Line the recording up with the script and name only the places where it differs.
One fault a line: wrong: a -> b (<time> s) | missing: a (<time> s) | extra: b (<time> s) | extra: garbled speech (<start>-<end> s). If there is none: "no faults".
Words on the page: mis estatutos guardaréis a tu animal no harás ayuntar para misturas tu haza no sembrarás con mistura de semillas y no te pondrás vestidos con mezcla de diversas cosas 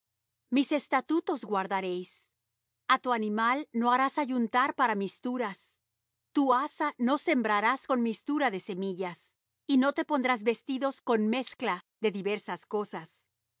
no faults